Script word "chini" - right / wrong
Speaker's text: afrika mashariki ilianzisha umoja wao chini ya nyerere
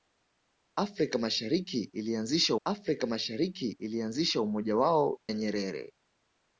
wrong